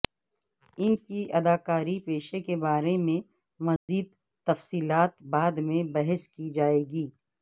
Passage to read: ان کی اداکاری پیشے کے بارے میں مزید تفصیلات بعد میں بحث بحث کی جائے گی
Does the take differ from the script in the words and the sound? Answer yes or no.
yes